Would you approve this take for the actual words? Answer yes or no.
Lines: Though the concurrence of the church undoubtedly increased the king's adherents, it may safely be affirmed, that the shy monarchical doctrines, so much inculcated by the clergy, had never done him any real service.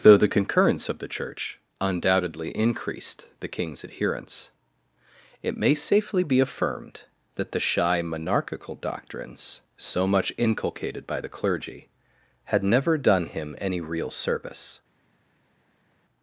yes